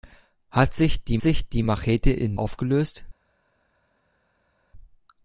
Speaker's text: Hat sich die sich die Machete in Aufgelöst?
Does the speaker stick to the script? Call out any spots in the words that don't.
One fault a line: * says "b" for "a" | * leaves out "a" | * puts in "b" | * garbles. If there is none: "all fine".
all fine